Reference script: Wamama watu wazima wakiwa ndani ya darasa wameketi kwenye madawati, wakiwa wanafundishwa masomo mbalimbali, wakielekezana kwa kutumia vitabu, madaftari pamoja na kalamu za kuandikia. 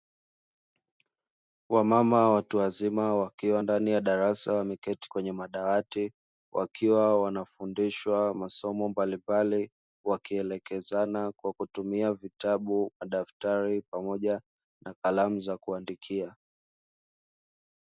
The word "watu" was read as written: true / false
true